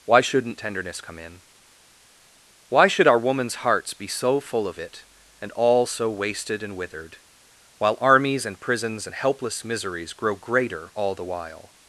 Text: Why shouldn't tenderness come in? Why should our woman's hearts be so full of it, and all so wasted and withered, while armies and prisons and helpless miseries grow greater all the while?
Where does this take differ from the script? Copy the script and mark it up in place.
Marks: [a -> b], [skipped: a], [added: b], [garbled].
Why shouldn't tenderness come in? Why should our woman's hearts be so full of it, and all so wasted and withered, while armies and prisons and helpless miseries grow greater all the while?